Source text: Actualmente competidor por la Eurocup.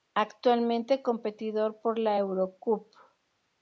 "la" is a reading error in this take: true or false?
false